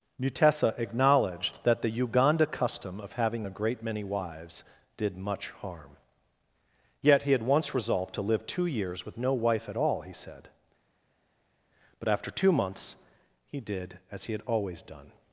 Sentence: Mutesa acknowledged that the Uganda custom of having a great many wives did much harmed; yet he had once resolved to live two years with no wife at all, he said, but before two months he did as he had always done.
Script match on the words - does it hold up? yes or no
no